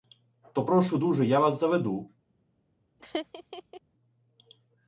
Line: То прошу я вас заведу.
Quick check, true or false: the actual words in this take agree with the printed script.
false